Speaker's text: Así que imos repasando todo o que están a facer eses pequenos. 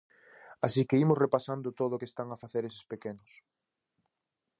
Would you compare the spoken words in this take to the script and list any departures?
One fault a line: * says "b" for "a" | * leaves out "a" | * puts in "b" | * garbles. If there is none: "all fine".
all fine